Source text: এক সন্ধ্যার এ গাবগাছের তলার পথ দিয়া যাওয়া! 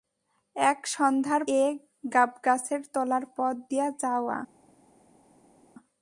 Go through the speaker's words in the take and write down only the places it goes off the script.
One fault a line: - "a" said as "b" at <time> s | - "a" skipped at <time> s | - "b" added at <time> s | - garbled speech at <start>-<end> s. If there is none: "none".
none